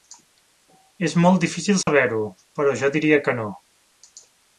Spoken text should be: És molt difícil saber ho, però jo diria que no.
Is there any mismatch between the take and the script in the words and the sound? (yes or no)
yes